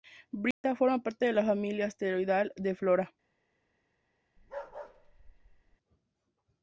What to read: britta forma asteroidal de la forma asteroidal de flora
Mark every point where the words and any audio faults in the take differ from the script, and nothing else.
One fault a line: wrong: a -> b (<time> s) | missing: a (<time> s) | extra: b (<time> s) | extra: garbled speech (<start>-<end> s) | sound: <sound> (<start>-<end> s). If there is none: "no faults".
sound: dropout (0.5-0.6 s)
wrong: asteroidal -> parte (1.0 s)
wrong: forma -> familia (1.4 s)
sound: bark (4.4-5.8 s)